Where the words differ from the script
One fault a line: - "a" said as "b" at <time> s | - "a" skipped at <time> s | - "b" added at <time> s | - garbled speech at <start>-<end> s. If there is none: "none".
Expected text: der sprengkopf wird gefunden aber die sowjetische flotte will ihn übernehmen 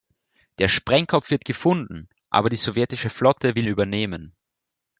- "ihn" skipped at 3.7 s